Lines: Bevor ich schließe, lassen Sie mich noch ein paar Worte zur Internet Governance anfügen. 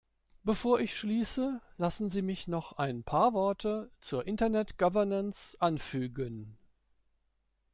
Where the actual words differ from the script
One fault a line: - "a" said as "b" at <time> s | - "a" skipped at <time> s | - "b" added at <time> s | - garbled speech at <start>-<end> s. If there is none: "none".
none